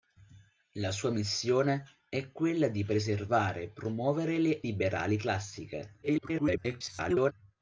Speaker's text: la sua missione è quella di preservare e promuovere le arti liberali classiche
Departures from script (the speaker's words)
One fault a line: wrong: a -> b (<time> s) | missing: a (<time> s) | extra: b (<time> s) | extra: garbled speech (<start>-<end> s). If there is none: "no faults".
missing: arti (4.6 s)
extra: garbled speech (6.0-7.3 s)